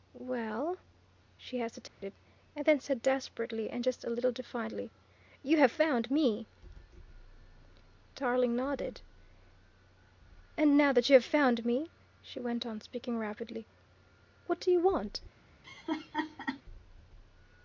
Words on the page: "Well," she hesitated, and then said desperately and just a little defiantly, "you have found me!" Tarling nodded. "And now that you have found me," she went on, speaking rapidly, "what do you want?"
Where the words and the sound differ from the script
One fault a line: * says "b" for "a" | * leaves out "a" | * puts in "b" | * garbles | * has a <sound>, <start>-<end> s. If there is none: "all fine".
* has a dropout, 1.9-2.0 s
* has a laugh, 15.6-16.6 s